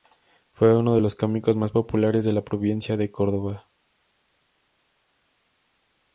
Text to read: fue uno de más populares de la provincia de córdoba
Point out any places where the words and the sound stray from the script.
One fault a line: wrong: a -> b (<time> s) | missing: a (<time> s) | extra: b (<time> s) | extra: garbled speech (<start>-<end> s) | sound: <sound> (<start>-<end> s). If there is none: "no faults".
extra: los cómicos (1.0 s)